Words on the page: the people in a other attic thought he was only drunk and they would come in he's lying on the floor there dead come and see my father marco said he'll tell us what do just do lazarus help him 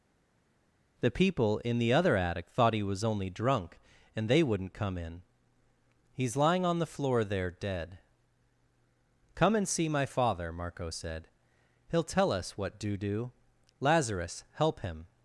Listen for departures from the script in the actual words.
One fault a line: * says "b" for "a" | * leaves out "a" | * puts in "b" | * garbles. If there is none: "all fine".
* says "the" for "a"
* says "wouldn't" for "would"
* leaves out "just"